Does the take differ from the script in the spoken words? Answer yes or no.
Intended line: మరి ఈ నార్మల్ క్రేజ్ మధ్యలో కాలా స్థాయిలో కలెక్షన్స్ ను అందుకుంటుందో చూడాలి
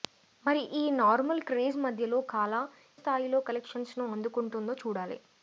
no